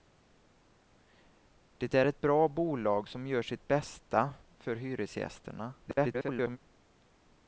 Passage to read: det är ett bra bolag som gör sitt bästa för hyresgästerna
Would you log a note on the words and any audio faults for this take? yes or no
yes